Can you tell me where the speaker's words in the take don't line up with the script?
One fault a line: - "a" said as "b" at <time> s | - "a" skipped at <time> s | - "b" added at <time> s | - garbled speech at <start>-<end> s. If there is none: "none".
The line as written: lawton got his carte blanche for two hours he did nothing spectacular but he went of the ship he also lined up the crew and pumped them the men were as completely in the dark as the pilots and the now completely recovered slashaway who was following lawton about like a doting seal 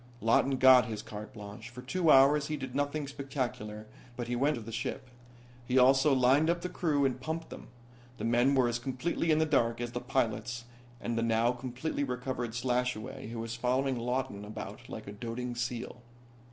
none